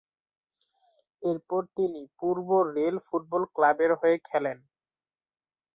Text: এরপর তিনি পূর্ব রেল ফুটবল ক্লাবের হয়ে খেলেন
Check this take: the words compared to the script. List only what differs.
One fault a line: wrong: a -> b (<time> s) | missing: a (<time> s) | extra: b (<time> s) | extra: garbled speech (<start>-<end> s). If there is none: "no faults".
no faults